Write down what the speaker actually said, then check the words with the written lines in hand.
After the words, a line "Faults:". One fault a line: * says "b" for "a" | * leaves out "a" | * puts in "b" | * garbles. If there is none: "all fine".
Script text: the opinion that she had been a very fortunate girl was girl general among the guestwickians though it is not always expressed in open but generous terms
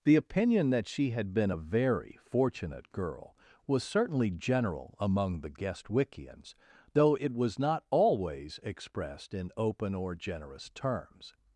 the opinion that she had been a very fortunate girl was certainly general among the guestwickians though it was not always expressed in open or generous terms
Faults:
* says "certainly" for "girl"
* says "was" for "is"
* says "or" for "but"